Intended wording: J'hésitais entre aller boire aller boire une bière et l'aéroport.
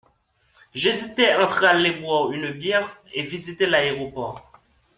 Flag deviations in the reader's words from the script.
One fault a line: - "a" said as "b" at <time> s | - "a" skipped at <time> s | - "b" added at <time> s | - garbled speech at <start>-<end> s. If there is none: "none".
- "aller boire" skipped at 2.3 s
- "visiter" added at 3.2 s